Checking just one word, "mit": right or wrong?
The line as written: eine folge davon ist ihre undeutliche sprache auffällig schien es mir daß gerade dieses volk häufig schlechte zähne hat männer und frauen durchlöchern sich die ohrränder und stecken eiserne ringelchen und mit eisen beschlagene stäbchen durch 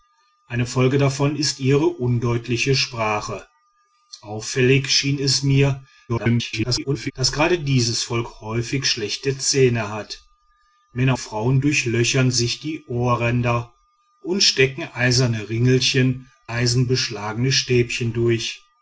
wrong